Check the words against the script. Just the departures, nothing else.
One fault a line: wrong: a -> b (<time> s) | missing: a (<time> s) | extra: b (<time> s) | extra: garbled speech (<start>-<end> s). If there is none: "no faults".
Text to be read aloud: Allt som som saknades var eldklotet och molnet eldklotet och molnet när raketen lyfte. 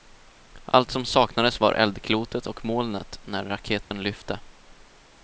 missing: som (1.1 s)
missing: eldklotet och molnet (3.2 s)